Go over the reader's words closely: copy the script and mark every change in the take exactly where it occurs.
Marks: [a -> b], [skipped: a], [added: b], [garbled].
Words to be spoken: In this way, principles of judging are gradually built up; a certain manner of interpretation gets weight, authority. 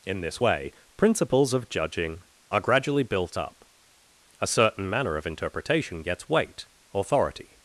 In this way, principles of judging are gradually built up; a certain manner of interpretation gets weight, authority.